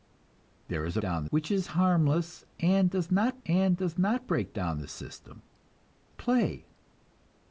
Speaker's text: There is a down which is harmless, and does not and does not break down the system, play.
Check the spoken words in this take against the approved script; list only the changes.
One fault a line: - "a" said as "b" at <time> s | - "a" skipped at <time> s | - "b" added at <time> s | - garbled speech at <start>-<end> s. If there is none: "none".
none